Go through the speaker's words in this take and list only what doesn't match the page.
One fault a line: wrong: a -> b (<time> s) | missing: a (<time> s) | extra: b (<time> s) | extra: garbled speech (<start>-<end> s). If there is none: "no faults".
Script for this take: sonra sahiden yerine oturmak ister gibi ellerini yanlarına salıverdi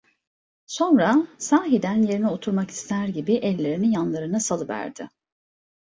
no faults